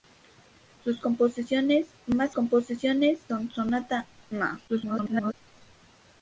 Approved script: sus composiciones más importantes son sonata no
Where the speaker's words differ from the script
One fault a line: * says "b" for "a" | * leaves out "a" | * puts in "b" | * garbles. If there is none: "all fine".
* says "composiciones" for "importantes"
* garbles